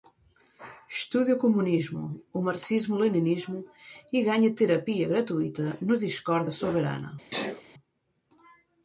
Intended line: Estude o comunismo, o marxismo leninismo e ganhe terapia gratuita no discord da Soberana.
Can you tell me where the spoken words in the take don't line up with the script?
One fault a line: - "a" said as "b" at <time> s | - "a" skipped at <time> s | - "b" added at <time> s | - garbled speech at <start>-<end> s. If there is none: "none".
none